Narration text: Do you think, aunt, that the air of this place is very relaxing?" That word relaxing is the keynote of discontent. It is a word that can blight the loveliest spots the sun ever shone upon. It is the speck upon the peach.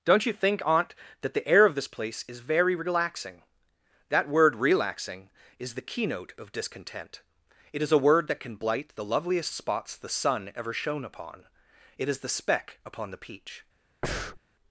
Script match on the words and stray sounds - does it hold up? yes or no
no